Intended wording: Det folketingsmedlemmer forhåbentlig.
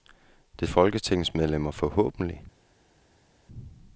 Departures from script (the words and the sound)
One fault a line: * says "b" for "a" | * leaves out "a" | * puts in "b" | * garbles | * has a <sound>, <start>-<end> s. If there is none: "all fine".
all fine